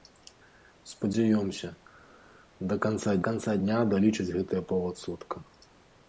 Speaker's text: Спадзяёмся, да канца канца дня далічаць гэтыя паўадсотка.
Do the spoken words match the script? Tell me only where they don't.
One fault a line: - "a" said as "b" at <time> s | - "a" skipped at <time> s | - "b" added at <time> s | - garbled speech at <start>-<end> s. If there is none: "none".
none